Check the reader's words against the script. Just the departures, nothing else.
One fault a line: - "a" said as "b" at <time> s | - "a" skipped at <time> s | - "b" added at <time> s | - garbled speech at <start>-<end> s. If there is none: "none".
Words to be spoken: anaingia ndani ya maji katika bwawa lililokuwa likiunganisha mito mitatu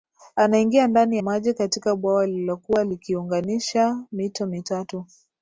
- "ya" skipped at 1.2 s